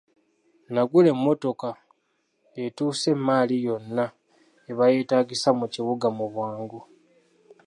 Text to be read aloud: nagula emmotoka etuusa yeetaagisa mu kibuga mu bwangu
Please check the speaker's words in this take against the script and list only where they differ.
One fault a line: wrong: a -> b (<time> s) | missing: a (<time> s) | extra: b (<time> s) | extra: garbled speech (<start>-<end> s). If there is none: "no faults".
extra: emmaali yonna eba (3.1 s)